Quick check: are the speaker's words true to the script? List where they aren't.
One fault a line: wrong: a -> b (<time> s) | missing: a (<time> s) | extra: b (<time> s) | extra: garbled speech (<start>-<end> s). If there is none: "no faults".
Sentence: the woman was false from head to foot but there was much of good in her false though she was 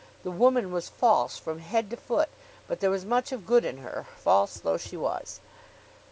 no faults